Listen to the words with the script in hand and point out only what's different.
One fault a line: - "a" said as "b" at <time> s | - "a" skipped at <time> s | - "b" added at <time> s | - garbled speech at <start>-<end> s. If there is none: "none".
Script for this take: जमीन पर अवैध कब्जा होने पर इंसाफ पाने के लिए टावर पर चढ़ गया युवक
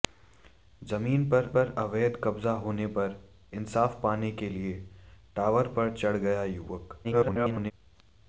- "पर" added at 1.5 s
- garbled speech at 7.0-7.7 s